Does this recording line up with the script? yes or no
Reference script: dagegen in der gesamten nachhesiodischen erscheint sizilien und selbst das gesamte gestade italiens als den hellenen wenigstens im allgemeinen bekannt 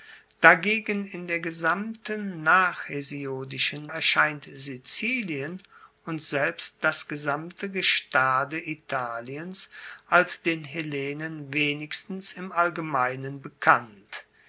yes